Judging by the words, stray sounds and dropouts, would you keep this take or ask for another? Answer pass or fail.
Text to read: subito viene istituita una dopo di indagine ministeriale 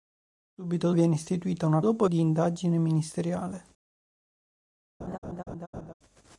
fail